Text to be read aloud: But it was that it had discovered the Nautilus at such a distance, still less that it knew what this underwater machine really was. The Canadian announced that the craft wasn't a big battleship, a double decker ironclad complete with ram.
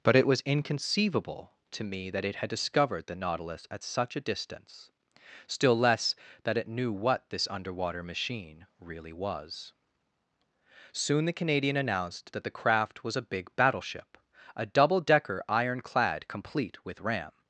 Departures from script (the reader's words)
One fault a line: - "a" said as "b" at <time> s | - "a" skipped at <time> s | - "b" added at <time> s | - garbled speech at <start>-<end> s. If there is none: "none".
- "inconceivable to me" added at 0.4 s
- "Soon" added at 10.9 s
- "wasn't" said as "was" at 13.0 s